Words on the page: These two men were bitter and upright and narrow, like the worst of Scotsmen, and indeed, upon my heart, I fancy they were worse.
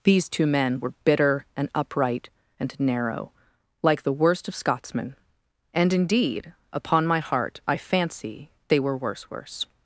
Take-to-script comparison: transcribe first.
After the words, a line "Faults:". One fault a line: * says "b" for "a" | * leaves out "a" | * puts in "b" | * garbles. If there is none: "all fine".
These two men were bitter and upright and narrow, like the worst of Scotsmen, and indeed, upon my heart, I fancy they were worse worse.
Faults:
* puts in "worse"